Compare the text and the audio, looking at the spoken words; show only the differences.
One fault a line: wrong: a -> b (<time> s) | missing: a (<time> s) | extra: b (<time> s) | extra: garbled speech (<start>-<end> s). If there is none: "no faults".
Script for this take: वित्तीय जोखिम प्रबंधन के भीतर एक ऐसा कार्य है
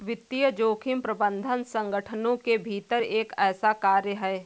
extra: संगठनों (1.6 s)